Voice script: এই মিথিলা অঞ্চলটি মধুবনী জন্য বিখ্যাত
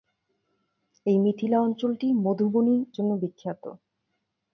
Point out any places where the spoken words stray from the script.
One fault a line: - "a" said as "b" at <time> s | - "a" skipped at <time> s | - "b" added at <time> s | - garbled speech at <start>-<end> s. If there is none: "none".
none